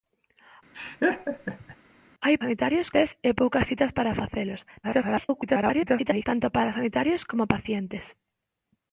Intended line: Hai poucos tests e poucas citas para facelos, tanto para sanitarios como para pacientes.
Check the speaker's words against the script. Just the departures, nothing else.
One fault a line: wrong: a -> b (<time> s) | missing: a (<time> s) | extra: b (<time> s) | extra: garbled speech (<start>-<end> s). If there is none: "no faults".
wrong: poucos -> sanitarios (2.4 s)
extra: garbled speech (4.8-6.3 s)
missing: para (7.4 s)